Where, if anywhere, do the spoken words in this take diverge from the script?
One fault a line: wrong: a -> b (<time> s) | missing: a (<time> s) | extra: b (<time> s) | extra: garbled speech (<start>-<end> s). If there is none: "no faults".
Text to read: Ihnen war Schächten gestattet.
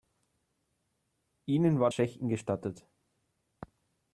no faults